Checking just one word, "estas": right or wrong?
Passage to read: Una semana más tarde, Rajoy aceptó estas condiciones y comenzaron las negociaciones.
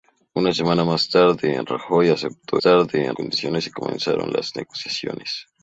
wrong